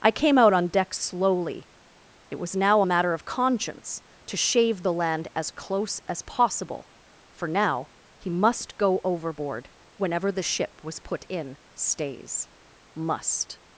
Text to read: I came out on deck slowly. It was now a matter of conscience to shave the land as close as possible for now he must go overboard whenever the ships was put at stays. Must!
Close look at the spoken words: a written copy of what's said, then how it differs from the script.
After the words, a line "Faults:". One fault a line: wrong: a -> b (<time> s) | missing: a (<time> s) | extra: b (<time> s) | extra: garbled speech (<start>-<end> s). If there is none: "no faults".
I came out on deck slowly. It was now a matter of conscience to shave the land as close as possible for now he must go overboard whenever the ship was put in stays. Must!
Faults:
wrong: ships -> ship (10.4 s)
wrong: at -> in (11.3 s)